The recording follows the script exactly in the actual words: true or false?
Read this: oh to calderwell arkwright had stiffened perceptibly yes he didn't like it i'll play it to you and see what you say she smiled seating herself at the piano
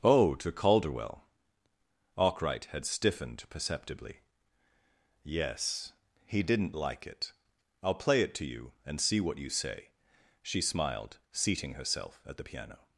true